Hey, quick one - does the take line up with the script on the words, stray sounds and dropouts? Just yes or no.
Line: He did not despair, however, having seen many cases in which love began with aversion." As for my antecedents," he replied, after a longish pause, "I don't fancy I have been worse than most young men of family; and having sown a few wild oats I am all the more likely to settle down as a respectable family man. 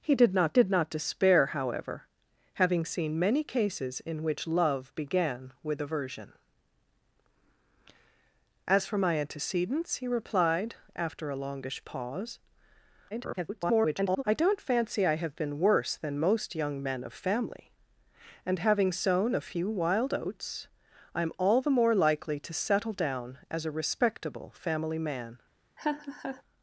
no